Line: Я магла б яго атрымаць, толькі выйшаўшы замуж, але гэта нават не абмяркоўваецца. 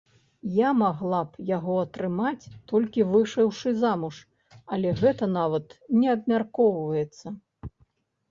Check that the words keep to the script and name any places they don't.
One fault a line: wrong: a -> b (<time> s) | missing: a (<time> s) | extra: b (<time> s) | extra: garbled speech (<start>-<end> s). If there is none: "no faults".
no faults